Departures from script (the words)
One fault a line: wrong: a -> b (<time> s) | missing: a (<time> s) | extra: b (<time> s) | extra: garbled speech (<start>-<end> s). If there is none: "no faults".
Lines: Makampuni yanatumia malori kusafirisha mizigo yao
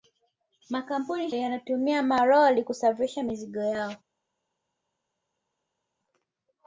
no faults